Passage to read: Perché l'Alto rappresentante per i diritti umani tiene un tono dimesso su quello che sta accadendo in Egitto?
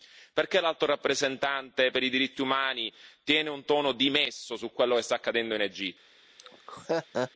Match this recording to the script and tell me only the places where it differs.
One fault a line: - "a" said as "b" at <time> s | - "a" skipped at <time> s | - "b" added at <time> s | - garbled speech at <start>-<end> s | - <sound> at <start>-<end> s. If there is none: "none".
- laugh at 6.4-7.3 s